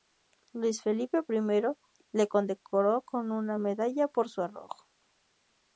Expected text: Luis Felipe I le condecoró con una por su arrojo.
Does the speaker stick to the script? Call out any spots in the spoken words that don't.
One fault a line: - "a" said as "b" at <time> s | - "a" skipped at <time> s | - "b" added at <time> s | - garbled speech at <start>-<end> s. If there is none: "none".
- "medalla" added at 3.6 s